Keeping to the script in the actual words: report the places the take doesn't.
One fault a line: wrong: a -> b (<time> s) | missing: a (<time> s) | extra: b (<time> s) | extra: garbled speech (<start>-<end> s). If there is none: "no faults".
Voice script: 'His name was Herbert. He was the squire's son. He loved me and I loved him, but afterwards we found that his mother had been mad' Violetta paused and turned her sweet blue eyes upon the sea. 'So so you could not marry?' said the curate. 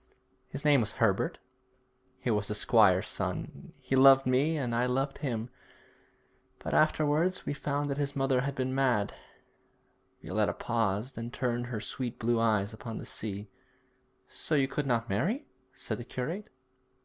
missing: so (14.5 s)